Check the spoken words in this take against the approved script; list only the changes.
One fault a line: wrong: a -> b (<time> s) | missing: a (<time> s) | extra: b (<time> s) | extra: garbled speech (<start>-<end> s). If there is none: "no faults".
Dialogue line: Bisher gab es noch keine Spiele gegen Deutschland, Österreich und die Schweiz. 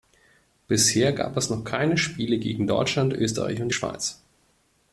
no faults